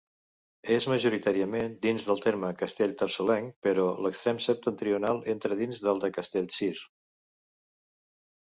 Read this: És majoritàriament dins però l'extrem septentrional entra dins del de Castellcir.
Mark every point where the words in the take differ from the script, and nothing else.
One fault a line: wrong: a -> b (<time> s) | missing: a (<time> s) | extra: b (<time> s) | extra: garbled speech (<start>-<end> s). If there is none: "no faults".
extra: del terme castellterçolenc (2.1 s)